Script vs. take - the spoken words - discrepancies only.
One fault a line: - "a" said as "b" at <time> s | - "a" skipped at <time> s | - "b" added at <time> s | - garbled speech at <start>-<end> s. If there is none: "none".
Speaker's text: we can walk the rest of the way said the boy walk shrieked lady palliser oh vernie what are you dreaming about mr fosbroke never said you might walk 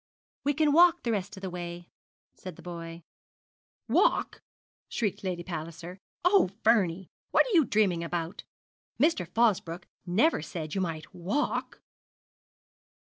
none